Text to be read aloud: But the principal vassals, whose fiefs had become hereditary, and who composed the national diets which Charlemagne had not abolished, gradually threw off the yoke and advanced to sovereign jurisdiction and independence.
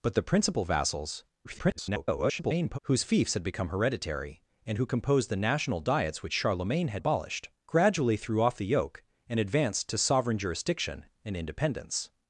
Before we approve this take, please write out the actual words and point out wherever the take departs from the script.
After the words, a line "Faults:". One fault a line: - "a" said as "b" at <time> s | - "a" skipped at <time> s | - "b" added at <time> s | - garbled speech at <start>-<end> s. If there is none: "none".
But the principal vassals, [garbled] whose fiefs had become hereditary, and who composed the national diets which Charlemagne had abolished, gradually threw off the yoke and advanced to sovereign jurisdiction and independence.
Faults:
- garbled speech at 1.4-2.8 s
- "not" skipped at 7.0 s